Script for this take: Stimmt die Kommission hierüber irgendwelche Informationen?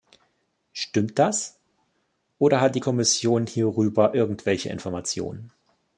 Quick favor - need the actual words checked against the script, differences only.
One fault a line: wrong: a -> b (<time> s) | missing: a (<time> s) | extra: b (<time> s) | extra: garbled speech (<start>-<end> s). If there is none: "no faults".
extra: das oder hat (1.2 s)